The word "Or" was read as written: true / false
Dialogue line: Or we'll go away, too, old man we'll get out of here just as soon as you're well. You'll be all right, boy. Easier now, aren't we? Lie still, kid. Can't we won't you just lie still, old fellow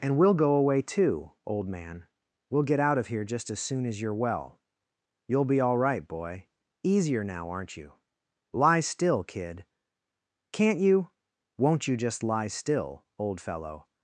false